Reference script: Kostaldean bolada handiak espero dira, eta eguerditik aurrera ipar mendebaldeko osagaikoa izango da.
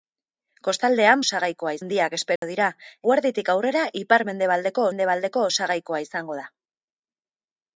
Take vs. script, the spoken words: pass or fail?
fail